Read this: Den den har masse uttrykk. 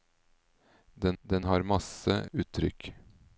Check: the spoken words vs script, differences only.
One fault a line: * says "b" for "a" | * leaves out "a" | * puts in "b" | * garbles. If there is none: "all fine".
all fine